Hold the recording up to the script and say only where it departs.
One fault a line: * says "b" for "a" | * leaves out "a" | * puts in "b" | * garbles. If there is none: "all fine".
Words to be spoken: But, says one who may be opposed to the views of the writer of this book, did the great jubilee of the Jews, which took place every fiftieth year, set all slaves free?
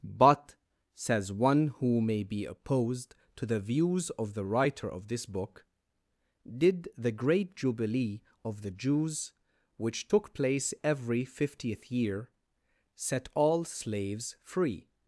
all fine